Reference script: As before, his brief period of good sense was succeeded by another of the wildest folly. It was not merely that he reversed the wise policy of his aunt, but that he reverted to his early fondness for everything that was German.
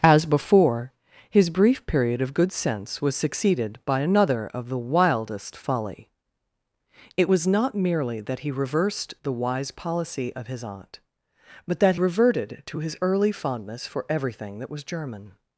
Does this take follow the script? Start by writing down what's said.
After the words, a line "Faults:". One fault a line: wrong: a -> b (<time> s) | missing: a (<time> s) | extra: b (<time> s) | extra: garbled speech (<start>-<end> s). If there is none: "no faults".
As before, his brief period of good sense was succeeded by another of the wildest folly. It was not merely that he reversed the wise policy of his aunt, but that reverted to his early fondness for everything that was German.
Faults:
missing: he (12.0 s)